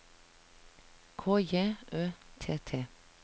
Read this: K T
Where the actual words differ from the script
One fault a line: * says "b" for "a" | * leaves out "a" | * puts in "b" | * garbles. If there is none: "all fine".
* puts in "J Ø T"